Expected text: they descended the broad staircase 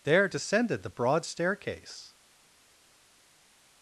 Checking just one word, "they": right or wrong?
wrong